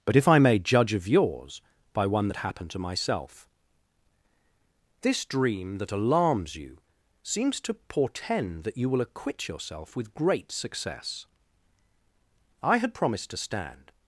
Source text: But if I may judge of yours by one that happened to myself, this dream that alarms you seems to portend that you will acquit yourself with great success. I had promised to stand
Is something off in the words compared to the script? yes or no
no